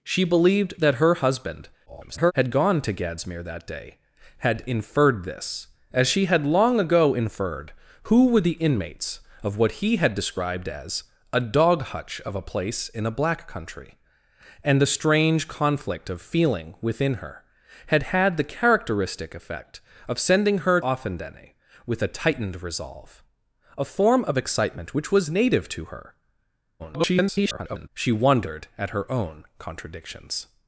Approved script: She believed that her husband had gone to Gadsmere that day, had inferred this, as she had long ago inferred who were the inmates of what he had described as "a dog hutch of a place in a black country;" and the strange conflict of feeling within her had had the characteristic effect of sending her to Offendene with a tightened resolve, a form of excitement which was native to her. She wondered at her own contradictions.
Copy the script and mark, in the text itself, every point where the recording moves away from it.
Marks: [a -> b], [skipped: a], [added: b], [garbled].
She believed that her husband [garbled] had gone to Gadsmere that day, had inferred this, as she had long ago inferred who were the inmates of what he had described as "a dog hutch of a place in a black country;" and the strange conflict of feeling within her had had the characteristic effect of sending her [skipped: to] Offendene with a tightened resolve, a form of excitement which was native to her. [garbled] She wondered at her own contradictions.